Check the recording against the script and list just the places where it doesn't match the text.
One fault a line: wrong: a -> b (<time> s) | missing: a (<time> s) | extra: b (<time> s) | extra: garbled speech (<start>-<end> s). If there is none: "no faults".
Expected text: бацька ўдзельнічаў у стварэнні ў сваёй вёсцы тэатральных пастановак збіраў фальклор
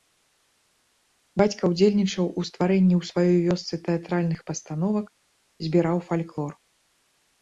no faults